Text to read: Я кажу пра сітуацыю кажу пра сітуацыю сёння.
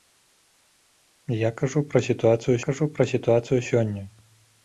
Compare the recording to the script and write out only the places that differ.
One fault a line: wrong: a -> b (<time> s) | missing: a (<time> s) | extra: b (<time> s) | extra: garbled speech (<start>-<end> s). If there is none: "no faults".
no faults